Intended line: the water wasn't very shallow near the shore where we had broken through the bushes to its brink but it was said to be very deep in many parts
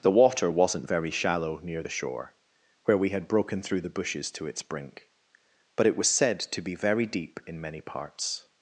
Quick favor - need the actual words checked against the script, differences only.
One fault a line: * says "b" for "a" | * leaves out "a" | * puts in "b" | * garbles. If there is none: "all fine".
all fine